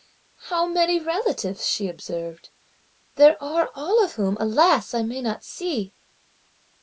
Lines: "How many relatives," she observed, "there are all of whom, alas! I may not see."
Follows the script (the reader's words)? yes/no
yes